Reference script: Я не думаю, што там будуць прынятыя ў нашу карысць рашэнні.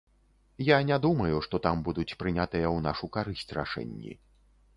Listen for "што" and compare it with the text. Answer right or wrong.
right